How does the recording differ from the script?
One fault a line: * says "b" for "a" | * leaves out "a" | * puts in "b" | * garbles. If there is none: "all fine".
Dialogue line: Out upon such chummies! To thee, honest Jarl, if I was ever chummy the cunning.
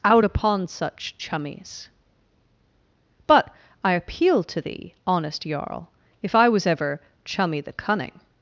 * puts in "But I appeal"